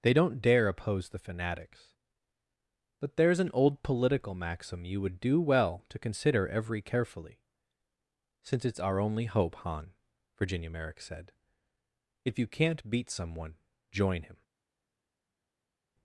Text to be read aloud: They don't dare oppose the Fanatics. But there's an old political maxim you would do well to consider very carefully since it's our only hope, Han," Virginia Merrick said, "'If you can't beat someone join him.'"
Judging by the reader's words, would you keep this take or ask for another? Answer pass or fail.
fail